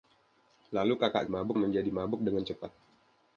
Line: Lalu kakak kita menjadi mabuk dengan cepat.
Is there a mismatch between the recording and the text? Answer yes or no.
yes